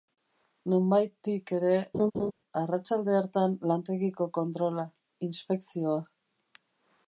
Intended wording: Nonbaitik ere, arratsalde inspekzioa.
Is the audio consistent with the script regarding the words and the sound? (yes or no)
no